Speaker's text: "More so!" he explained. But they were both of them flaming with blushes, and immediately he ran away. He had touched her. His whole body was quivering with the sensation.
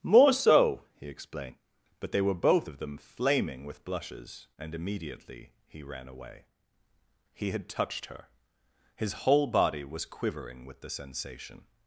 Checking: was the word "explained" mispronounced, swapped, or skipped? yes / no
no